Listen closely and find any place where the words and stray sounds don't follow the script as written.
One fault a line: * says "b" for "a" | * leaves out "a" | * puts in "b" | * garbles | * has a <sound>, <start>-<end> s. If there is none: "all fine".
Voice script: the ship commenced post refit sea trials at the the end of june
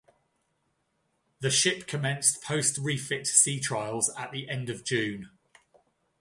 * leaves out "the"